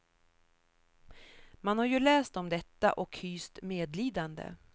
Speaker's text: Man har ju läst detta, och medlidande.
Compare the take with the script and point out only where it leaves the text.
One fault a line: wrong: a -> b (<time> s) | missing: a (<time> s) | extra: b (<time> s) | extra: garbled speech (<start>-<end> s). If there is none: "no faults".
extra: om (2.4 s)
extra: hyst (3.2 s)